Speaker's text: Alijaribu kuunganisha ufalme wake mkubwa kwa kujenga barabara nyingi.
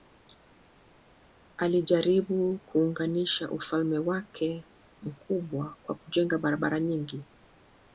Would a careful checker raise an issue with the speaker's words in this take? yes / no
no